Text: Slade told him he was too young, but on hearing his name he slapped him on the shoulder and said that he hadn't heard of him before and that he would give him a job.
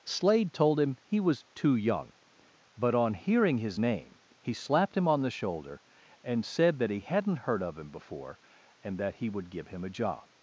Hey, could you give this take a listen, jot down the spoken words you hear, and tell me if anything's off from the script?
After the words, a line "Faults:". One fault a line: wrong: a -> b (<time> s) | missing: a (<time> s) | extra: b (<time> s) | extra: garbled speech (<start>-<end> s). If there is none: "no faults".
Slade told him he was too young, but on hearing his name he slapped him on the shoulder and said that he hadn't heard of him before and that he would give him a job.
Faults:
no faults